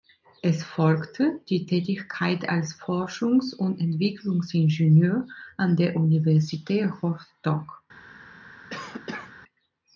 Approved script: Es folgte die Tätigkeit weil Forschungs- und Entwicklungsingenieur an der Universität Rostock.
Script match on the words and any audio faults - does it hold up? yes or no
no